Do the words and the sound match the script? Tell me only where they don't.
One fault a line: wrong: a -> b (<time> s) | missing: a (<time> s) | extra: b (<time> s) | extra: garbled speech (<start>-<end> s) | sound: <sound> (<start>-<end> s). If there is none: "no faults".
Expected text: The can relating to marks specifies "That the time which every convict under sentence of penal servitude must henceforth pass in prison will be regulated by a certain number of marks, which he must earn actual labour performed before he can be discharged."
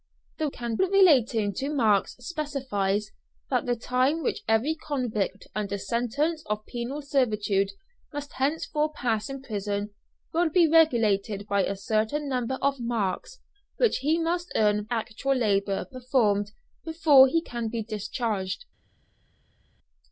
no faults